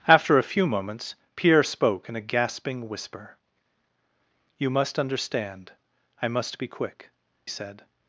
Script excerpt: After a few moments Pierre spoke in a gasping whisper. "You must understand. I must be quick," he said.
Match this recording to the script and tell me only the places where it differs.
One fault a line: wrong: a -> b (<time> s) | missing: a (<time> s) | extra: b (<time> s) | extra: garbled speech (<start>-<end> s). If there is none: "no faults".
missing: he (7.1 s)